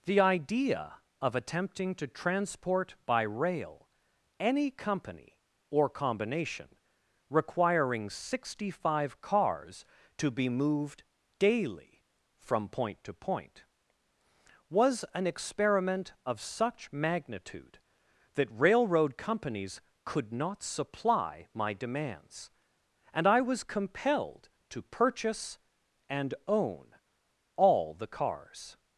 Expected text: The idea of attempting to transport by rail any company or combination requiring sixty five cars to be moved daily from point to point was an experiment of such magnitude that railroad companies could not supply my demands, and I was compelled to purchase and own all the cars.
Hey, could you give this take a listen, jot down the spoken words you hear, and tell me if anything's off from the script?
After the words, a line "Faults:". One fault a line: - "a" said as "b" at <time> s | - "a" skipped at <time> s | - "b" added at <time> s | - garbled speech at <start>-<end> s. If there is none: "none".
The idea of attempting to transport by rail any company or combination requiring sixty five cars to be moved daily from point to point was an experiment of such magnitude that railroad companies could not supply my demands, and I was compelled to purchase and own all the cars.
Faults:
none